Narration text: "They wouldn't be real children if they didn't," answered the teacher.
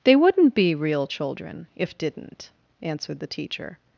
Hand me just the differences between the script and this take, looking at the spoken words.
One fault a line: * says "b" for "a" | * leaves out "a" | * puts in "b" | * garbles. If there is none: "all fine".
* leaves out "they"